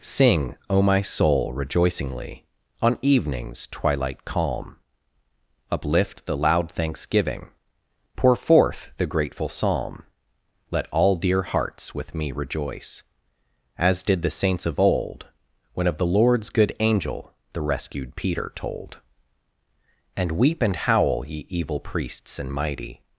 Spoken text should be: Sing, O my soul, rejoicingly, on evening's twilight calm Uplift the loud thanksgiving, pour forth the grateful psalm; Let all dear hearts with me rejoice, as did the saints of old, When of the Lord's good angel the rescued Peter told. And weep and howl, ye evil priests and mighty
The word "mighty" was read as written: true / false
true